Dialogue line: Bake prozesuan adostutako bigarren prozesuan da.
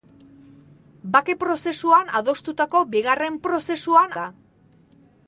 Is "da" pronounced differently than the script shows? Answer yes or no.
no